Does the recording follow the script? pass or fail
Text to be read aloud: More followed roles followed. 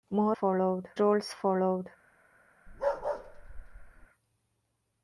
pass